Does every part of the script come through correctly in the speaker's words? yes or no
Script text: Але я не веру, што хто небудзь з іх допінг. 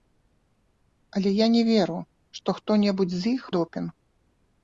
yes